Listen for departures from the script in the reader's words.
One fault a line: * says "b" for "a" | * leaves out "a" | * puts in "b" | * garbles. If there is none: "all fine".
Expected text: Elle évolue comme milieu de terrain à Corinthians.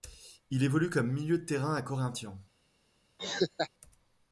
* says "Il" for "Elle"